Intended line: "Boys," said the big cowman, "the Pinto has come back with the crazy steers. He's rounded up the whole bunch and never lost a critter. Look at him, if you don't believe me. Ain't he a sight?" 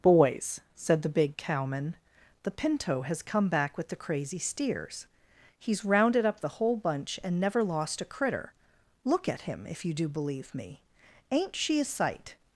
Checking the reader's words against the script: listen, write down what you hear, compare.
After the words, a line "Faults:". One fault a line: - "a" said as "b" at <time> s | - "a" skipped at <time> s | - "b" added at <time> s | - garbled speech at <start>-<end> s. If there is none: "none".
"Boys," said the big cowman, "the Pinto has come back with the crazy steers. He's rounded up the whole bunch and never lost a critter. Look at him, if you do believe me. Ain't she a sight?"
Faults:
- "don't" said as "do" at 9.9 s
- "he" said as "she" at 11.6 s